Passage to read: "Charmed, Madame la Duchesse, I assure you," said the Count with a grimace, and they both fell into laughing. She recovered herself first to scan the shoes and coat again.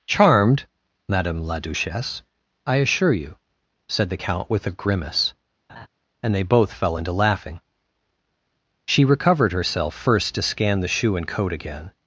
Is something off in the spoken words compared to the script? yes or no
yes